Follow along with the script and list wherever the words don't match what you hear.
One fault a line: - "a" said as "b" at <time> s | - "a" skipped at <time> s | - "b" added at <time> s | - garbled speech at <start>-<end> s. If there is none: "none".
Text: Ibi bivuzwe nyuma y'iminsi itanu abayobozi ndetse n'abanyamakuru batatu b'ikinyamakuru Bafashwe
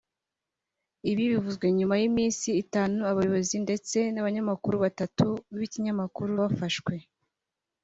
none